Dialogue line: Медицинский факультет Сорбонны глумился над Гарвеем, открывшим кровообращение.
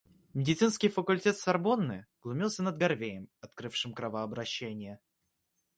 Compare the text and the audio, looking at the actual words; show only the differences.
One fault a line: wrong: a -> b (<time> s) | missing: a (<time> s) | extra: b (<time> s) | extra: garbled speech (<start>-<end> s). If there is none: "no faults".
no faults